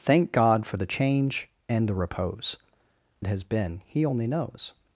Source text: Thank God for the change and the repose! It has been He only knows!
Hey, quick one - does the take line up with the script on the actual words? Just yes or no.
yes